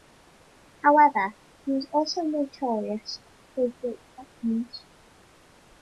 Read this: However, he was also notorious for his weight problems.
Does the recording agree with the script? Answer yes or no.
yes